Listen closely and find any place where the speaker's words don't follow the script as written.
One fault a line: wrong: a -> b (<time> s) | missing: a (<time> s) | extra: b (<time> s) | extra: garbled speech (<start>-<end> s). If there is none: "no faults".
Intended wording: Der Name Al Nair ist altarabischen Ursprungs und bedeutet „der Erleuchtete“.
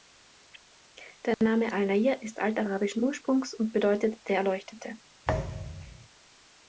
no faults